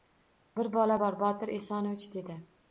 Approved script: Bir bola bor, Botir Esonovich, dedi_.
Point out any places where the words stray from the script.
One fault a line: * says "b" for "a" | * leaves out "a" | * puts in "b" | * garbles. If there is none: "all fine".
all fine